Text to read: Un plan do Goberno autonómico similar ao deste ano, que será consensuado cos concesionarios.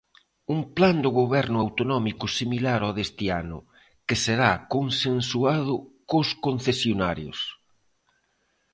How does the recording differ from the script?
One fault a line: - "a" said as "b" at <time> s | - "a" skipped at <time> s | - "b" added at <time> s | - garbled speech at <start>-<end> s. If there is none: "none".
none